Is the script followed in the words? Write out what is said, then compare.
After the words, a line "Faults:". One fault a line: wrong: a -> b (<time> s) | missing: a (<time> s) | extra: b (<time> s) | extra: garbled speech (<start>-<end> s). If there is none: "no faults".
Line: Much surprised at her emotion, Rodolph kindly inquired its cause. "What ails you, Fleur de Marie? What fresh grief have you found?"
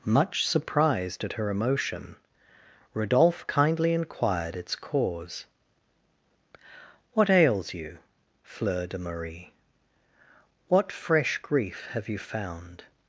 Much surprised at her emotion, Rodolph kindly inquired its cause. "What ails you, Fleur de Marie? What fresh grief have you found?"
Faults:
no faults